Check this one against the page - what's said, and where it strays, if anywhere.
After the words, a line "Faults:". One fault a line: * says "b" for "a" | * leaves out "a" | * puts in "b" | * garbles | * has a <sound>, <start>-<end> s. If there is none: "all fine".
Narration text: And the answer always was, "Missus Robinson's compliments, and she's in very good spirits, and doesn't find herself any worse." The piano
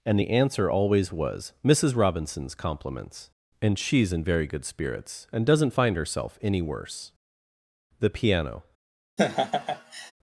And the answer always was, "Missus Robinson's compliments, and she's in very good spirits, and doesn't find herself any worse." The piano
Faults:
* has a laugh, 9.2-10.1 s